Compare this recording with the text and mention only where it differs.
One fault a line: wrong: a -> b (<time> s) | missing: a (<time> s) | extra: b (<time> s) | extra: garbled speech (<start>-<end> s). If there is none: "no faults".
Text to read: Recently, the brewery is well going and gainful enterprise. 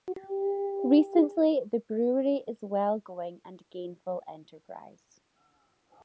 no faults